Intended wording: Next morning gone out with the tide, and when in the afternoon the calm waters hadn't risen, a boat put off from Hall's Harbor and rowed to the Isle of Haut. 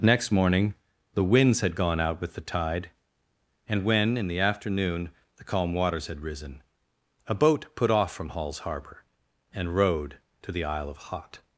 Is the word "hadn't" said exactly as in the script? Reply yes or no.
no